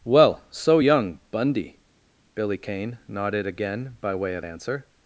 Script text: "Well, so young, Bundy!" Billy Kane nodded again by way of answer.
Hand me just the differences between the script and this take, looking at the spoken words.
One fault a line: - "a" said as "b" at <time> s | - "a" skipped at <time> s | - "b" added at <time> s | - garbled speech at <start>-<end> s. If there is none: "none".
none